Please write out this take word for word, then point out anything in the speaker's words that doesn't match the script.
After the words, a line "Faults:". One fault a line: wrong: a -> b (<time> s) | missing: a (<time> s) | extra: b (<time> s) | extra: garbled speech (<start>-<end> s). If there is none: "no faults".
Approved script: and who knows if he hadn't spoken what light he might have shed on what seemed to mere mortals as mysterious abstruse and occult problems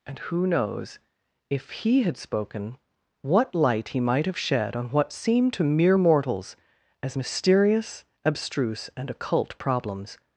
and who knows if he had spoken what light he might have shed on what seemed to mere mortals as mysterious abstruse and occult problems
Faults:
wrong: hadn't -> had (2.0 s)